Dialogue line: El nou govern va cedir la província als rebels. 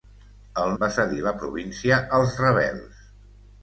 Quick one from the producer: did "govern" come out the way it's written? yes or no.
no